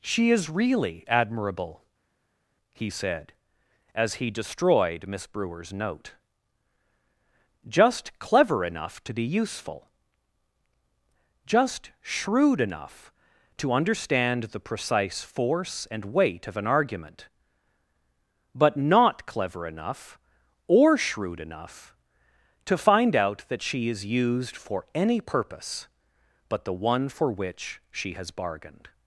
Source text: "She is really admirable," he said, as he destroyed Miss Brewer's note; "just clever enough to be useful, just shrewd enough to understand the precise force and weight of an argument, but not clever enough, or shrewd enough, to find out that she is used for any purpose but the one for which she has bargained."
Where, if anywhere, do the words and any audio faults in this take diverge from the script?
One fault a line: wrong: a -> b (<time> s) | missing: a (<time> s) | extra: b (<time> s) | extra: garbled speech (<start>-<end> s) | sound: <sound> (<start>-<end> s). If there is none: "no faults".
no faults